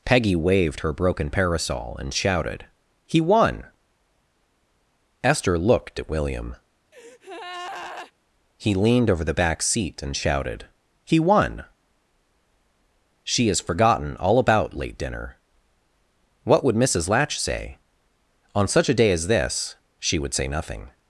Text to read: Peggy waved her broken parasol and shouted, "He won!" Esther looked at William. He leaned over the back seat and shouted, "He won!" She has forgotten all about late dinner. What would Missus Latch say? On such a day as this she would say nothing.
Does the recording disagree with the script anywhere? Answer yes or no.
no